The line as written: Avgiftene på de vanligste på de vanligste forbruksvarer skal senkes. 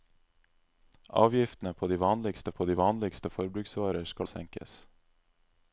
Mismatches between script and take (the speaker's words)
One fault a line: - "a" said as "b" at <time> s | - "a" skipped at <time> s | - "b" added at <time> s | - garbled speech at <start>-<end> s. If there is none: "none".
none